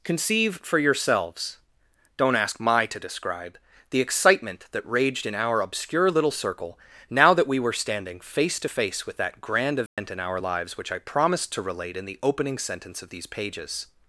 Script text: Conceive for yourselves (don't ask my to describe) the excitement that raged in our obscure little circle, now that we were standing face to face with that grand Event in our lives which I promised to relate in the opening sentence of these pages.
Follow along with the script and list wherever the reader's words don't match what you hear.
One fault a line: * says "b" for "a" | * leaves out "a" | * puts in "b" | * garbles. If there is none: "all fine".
all fine